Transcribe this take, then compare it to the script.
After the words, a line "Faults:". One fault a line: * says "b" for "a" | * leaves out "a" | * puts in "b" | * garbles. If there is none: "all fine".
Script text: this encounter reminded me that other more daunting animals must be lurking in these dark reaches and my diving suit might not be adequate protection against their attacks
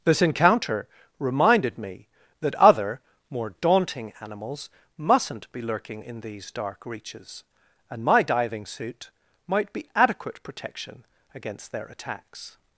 this encounter reminded me that other more daunting animals mustn't be lurking in these dark reaches and my diving suit might be adequate protection against their attacks
Faults:
* says "mustn't" for "must"
* leaves out "not"